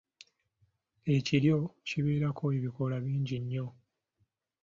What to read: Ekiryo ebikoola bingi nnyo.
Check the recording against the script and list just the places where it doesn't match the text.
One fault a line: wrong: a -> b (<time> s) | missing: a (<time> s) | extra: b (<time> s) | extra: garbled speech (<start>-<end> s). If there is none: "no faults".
extra: kibeerako (1.9 s)